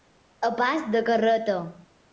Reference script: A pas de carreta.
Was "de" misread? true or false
false